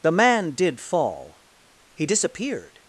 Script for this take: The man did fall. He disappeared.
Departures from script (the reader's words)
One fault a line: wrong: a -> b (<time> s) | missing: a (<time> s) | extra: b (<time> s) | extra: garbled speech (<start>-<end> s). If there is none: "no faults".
no faults